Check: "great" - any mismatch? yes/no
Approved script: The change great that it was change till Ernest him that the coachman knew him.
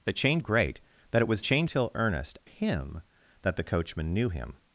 no